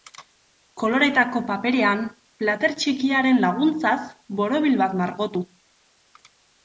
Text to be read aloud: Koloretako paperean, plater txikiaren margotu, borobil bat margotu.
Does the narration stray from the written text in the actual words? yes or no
yes